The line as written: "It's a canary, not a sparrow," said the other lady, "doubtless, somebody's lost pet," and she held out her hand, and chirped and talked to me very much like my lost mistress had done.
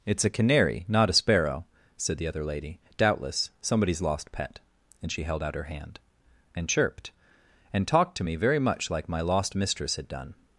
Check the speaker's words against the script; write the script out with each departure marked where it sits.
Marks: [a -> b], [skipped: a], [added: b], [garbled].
"It's a canary, not a sparrow," said the other lady, "doubtless, somebody's lost pet," and she held out her hand, and chirped and talked to me very much like my lost mistress had done.